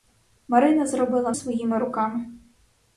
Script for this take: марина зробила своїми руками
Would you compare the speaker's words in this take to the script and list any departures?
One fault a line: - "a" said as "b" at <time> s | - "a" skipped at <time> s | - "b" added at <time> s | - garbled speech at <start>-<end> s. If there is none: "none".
none